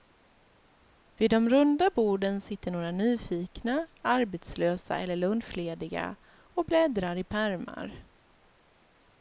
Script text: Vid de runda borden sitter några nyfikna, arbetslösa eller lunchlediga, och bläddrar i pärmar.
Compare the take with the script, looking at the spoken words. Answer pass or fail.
pass